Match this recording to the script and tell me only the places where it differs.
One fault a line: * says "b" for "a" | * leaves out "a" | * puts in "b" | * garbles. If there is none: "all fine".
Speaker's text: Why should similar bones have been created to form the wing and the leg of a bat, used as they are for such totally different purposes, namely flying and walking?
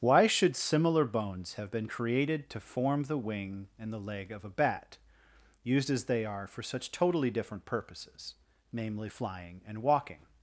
all fine